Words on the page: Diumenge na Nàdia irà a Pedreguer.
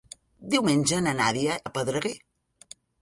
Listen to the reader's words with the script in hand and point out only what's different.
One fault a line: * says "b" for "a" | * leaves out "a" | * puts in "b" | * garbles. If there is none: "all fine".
* leaves out "irà"